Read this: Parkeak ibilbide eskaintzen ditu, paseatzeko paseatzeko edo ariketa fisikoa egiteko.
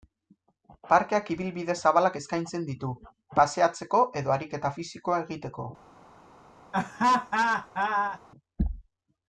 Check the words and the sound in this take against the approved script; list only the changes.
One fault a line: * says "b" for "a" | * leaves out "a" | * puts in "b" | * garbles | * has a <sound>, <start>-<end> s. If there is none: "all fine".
* puts in "zabalak"
* leaves out "paseatzeko"
* has a laugh, 6.7-8.2 s